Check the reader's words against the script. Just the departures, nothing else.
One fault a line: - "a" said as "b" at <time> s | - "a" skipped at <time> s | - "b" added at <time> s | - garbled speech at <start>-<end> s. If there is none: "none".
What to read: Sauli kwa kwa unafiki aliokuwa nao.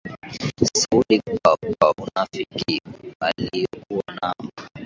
none